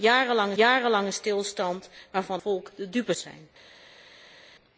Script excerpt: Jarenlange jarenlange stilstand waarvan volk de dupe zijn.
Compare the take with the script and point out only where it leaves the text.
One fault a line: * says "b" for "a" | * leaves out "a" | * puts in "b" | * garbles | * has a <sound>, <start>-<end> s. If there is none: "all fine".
all fine